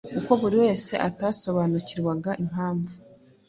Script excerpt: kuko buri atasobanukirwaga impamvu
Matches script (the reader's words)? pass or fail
fail